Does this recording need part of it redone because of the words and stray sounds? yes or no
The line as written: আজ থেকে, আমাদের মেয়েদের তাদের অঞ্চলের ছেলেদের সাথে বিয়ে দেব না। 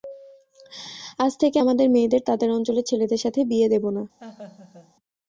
yes